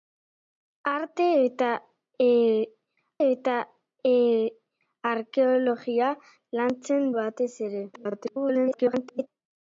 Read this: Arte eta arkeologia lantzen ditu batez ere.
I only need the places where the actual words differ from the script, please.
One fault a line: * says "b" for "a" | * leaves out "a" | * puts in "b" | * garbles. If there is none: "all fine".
* puts in "eta"
* leaves out "ditu"
* garbles